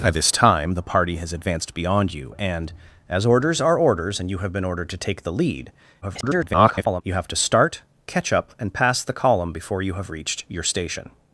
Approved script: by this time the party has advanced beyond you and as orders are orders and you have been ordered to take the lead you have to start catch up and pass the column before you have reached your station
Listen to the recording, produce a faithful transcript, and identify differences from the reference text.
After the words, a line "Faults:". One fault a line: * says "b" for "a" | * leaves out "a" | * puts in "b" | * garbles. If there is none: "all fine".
by this time the party has advanced beyond you and as orders are orders and you have been ordered to take the lead [garbled] you have to start catch up and pass the column before you have reached your station
Faults:
* garbles